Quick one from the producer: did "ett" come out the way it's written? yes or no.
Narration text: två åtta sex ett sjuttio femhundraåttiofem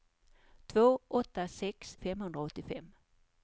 no